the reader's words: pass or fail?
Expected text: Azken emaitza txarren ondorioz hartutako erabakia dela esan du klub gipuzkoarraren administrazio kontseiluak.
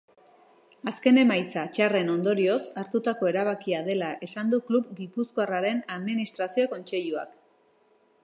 pass